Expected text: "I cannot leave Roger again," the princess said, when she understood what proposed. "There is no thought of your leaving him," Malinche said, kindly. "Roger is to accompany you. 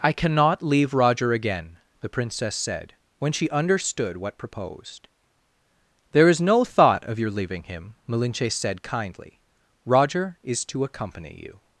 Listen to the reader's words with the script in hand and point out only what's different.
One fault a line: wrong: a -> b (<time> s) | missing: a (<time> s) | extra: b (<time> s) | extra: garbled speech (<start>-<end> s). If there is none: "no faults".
no faults